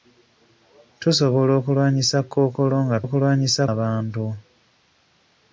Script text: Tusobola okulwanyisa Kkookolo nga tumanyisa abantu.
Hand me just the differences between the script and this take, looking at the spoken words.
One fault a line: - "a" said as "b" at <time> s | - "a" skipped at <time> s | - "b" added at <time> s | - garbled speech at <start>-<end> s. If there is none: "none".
- "tumanyisa" said as "okulwanyisa" at 3.0 s